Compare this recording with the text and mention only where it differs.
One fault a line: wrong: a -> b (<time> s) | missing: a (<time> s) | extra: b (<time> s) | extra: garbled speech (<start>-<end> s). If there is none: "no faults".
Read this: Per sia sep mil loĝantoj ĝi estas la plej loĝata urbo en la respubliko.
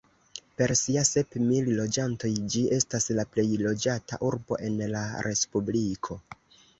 no faults